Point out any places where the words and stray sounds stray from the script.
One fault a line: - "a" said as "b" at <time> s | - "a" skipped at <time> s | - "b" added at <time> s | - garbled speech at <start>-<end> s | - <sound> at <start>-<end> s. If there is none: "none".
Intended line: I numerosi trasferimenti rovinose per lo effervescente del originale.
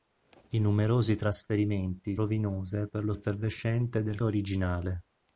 none